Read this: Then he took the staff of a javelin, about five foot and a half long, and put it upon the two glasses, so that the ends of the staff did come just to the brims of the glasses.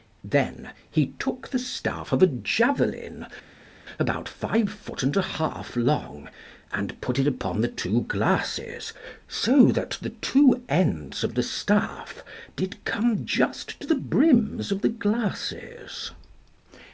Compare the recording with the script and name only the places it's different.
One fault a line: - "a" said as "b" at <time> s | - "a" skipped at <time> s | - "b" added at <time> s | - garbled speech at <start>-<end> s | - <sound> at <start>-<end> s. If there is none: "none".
- "two" added at 10.1 s